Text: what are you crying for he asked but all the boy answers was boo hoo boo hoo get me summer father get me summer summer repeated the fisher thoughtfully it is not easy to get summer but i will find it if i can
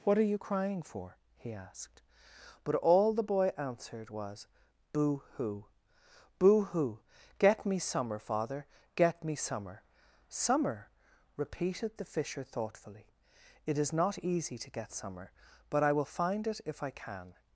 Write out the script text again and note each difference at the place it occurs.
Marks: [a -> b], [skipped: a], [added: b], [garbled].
what are you crying for he asked but all the boy [answers -> answered] was boo hoo boo hoo get me summer father get me summer summer repeated the fisher thoughtfully it is not easy to get summer but i will find it if i can